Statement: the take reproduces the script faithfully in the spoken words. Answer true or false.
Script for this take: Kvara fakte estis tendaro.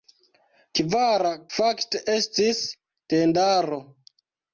true